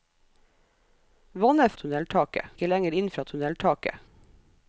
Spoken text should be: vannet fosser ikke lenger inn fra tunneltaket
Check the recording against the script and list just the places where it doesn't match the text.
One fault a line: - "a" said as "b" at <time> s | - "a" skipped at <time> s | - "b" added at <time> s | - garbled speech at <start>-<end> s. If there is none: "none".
- "fosser" said as "tunneltaket" at 1.8 s